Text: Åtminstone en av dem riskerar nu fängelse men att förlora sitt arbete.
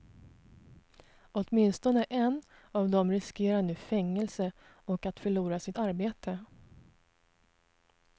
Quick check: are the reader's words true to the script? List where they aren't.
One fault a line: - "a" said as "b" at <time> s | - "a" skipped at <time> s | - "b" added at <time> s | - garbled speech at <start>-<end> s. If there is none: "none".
- "men" said as "och" at 4.6 s